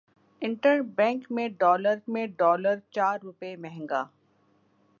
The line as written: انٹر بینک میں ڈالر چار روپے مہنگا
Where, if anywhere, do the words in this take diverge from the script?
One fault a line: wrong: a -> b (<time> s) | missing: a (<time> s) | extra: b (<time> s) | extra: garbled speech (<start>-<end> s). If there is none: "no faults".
extra: میں ڈالر (2.1 s)